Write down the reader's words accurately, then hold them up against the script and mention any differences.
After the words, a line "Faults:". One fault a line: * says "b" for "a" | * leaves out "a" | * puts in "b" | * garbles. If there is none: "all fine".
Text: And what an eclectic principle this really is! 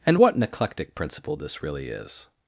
And what an eclectic principle this really is!
Faults:
all fine